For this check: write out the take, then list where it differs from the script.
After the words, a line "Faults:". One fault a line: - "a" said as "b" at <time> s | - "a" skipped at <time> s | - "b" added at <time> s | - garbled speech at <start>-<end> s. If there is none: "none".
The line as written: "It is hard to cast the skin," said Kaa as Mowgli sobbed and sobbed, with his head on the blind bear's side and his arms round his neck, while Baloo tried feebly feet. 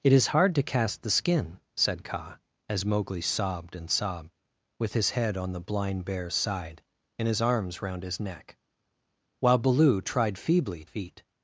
"It is hard to cast the skin," said Kaa as Mowgli sobbed and sobbed, with his head on the blind bear's side and his arms round his neck, while Baloo tried feebly feet.
Faults:
none